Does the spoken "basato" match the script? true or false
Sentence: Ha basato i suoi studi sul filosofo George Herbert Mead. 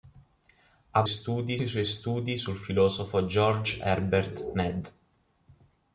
false